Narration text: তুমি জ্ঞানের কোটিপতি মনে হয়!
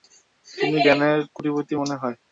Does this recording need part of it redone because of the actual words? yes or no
no